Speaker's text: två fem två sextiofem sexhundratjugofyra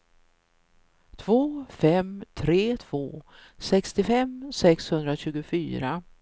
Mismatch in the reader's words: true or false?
true